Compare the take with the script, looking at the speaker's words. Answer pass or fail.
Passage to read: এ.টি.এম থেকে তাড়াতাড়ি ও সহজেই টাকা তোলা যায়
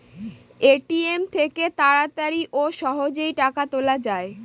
pass